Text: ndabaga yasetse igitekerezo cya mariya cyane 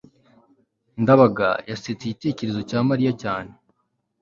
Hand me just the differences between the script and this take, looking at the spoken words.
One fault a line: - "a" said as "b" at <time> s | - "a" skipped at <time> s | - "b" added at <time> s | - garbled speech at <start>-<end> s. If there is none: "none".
none